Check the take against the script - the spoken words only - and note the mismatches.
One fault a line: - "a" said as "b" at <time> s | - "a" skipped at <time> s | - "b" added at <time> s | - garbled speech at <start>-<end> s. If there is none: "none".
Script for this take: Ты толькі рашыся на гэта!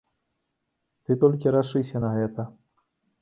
none